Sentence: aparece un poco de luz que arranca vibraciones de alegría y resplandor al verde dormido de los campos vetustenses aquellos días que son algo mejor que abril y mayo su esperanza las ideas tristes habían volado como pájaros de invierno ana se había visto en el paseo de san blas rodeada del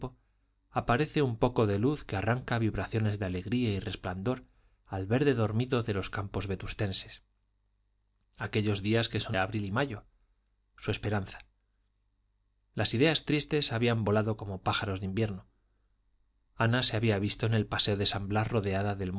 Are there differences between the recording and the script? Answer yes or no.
yes